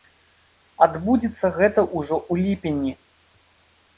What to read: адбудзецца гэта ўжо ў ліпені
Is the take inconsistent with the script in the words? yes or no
no